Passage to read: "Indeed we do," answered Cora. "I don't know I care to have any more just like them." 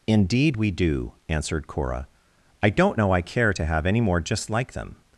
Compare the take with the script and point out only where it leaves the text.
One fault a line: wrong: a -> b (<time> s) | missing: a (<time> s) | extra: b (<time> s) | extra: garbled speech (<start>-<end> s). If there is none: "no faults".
no faults